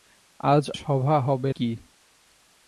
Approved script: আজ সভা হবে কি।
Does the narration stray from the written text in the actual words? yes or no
no